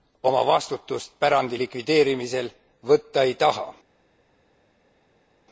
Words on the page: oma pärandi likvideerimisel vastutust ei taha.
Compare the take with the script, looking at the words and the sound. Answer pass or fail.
fail